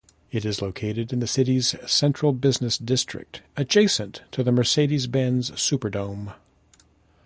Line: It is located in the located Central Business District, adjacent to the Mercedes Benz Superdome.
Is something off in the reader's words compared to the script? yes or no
yes